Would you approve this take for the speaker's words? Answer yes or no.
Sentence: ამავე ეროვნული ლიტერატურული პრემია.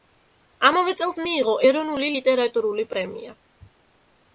no